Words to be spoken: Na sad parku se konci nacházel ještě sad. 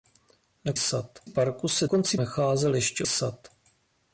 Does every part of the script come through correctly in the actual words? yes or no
yes